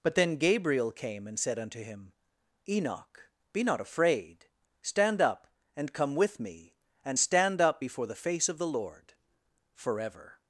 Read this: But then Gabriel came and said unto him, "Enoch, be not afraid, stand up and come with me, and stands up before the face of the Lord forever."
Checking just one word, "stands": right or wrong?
wrong